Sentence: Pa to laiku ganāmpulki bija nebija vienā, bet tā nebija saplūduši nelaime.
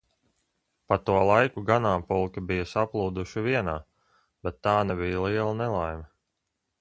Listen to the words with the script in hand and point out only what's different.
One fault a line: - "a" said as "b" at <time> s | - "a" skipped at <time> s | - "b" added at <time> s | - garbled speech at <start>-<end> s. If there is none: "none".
- "nebija" said as "saplūduši" at 2.7 s
- "saplūduši" said as "liela" at 5.3 s